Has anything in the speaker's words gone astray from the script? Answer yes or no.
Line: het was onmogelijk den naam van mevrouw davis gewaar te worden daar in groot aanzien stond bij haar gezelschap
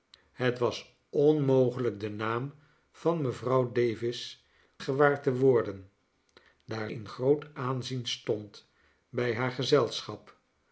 no